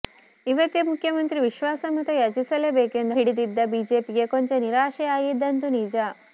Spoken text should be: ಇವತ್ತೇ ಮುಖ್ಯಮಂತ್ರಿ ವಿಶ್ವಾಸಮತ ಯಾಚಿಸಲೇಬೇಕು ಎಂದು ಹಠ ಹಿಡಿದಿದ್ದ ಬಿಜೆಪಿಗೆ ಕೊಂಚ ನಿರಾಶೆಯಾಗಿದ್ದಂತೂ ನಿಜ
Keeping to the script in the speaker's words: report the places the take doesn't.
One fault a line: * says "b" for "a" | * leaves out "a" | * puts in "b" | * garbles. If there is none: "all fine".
* leaves out "ಹಠ"